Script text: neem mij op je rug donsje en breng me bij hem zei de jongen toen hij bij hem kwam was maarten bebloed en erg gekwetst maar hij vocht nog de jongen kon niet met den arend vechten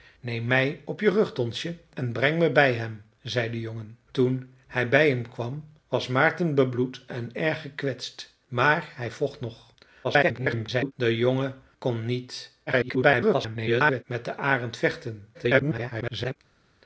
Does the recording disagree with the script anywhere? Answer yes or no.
yes